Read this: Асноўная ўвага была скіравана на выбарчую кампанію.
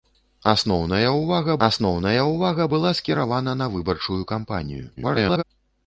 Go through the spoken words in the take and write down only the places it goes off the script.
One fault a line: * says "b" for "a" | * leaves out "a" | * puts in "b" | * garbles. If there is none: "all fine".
* puts in "асноўная ўвага"
* garbles